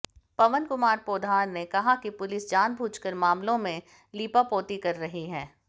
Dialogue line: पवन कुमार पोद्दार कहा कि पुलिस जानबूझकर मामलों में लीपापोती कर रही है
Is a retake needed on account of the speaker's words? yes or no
yes